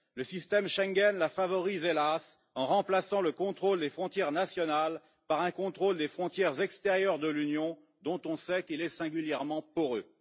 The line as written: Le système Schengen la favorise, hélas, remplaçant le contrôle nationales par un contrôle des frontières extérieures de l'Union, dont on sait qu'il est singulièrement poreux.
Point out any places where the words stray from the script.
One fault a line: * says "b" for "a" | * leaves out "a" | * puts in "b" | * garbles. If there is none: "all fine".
* puts in "en"
* puts in "des frontières"